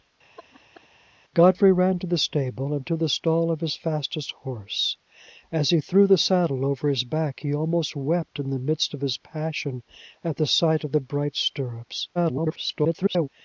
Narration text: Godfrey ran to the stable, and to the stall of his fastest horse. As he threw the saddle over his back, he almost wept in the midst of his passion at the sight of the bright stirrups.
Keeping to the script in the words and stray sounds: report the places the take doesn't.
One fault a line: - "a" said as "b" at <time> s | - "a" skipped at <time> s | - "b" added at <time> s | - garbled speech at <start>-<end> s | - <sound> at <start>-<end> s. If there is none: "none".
- laugh at 0.4-0.9 s
- garbled speech at 12.1-13.3 s